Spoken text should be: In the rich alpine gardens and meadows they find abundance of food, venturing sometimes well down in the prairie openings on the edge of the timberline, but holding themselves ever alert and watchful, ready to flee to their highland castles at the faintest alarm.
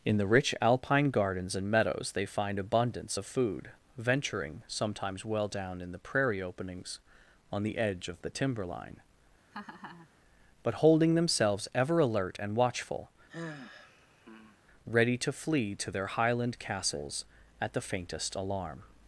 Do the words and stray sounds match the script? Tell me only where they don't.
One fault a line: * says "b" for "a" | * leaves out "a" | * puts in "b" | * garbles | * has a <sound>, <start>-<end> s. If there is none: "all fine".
* has a laugh, 9.5-10.1 s
* has a sigh, 13.3-14.6 s